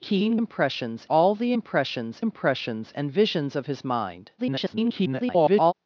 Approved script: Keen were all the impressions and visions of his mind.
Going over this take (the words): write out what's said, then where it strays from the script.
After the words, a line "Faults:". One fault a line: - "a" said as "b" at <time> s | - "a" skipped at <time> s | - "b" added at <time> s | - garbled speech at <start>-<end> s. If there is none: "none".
Keen impressions all the impressions impressions and visions of his mind. [garbled]
Faults:
- "were" said as "impressions" at 0.3 s
- "impressions" added at 2.2 s
- garbled speech at 4.4-5.7 s